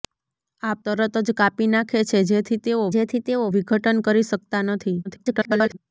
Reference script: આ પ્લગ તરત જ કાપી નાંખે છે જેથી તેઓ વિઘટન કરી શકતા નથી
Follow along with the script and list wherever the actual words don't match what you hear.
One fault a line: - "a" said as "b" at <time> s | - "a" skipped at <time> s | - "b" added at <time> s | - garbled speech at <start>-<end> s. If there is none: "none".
- "પ્લગ" skipped at 0.8 s
- "જેથી તેઓ" added at 2.9 s
- garbled speech at 5.0-5.8 s